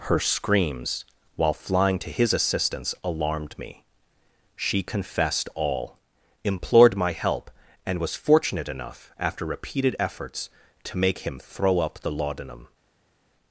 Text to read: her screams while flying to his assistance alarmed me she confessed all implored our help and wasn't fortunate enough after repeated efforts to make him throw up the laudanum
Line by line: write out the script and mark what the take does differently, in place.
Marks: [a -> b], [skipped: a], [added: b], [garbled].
her screams while flying to his assistance alarmed me she confessed all implored [our -> my] help and [wasn't -> was] fortunate enough after repeated efforts to make him throw up the laudanum